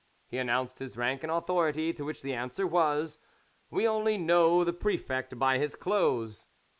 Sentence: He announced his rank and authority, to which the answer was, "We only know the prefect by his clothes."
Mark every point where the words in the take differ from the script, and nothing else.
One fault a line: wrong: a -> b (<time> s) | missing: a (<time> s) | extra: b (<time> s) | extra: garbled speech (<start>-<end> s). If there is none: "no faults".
no faults